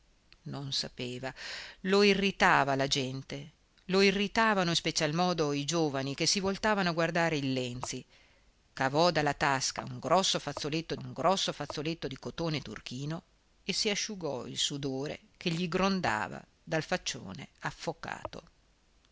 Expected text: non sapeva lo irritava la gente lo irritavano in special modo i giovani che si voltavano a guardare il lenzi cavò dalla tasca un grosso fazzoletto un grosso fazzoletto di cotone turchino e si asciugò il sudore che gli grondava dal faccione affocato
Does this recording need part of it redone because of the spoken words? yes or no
no